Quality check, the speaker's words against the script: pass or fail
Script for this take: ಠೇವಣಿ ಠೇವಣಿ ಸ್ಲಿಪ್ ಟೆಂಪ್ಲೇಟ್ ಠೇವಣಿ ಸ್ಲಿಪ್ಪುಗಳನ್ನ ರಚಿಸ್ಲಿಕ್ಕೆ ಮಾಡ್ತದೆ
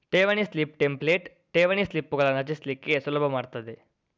fail